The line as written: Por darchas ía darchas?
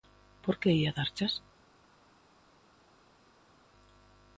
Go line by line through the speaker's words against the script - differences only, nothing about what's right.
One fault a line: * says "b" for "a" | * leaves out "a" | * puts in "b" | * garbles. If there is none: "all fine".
* says "que" for "darchas"